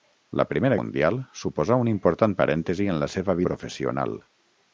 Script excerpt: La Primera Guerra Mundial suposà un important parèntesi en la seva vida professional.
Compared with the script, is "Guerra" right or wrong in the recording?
wrong